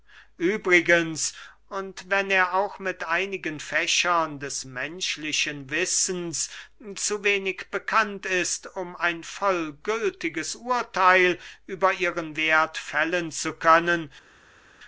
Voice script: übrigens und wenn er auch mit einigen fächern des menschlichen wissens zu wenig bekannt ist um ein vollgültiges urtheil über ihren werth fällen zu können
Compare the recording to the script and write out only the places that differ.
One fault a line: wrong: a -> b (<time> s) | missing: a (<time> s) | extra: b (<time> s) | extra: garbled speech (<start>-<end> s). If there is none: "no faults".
no faults